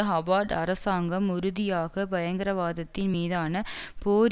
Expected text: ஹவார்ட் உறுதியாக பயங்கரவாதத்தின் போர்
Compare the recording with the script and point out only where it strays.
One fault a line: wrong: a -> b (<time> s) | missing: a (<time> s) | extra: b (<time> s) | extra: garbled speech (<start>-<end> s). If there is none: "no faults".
extra: அரசாங்கம் (0.5 s)
extra: மீதான (3.1 s)